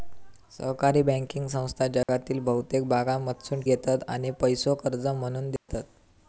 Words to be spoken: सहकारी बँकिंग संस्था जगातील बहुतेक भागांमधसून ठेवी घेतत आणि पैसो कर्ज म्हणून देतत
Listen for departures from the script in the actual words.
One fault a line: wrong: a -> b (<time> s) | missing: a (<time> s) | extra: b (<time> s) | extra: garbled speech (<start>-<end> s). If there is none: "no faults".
missing: ठेवी (3.6 s)